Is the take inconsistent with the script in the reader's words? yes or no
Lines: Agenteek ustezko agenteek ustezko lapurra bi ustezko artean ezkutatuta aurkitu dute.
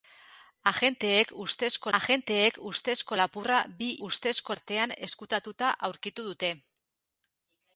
no